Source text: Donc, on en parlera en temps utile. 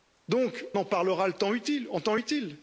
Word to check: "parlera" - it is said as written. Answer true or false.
true